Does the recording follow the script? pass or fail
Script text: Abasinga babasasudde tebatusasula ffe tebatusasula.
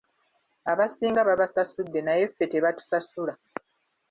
fail